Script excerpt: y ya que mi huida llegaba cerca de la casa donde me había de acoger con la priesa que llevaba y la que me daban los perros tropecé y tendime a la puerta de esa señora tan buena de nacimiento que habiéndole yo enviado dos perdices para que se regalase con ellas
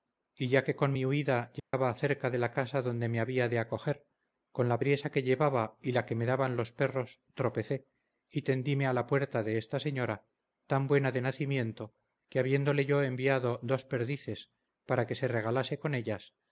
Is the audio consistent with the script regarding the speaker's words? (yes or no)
no